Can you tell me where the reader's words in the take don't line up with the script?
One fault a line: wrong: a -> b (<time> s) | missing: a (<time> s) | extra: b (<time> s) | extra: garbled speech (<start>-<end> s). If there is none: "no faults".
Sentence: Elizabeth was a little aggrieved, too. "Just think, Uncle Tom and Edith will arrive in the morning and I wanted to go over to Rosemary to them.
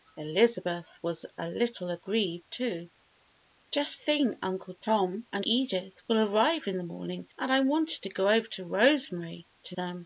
no faults